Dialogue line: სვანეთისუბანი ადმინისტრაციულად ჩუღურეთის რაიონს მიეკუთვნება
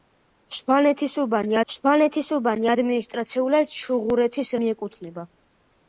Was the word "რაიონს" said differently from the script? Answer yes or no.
yes